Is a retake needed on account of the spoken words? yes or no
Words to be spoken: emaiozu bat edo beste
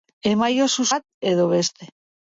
no